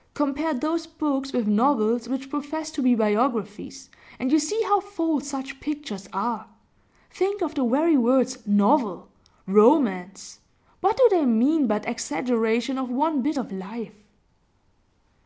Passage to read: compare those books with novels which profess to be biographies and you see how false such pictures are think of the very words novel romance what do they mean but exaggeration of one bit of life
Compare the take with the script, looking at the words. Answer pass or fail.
pass